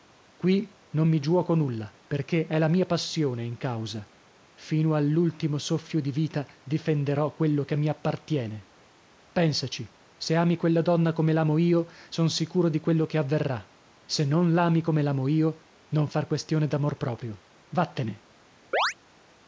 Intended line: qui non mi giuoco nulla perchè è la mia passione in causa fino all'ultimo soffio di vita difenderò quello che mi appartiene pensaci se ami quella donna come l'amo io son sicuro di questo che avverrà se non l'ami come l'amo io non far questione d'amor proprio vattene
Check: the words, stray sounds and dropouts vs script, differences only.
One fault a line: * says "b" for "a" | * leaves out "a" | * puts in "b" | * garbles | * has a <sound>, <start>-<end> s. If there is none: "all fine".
* says "quello" for "questo"
* has a chirp, 18.7-18.9 s